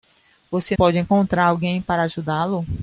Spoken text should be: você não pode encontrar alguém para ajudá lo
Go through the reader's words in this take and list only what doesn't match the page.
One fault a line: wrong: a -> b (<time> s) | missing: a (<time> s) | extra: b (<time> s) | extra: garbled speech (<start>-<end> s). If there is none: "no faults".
missing: não (0.8 s)